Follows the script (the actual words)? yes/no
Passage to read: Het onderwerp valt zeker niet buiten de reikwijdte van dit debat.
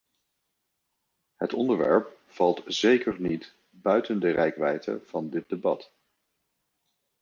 yes